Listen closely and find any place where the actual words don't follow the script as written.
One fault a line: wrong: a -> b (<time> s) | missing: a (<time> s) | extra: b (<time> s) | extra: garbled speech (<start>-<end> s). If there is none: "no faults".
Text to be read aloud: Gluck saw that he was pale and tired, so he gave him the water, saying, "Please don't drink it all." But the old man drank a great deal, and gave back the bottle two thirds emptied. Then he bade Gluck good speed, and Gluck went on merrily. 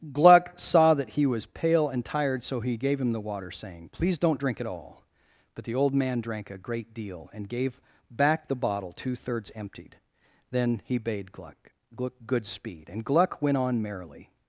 no faults